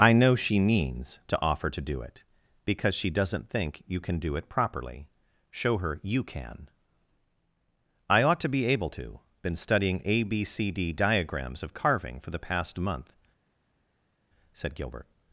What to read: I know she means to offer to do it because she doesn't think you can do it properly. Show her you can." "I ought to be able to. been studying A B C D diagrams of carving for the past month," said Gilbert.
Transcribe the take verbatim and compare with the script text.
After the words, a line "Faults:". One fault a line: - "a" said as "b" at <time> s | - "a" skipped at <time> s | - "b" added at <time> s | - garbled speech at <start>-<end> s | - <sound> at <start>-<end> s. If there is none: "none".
I know she means to offer to do it because she doesn't think you can do it properly. Show her you can." "I ought to be able to. been studying A B C D diagrams of carving for the past month," said Gilbert.
Faults:
none